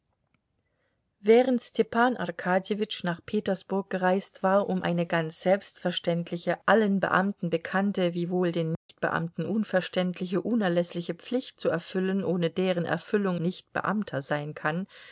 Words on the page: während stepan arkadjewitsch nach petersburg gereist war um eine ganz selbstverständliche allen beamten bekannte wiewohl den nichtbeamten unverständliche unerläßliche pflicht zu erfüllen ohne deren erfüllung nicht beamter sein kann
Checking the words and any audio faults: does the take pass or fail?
fail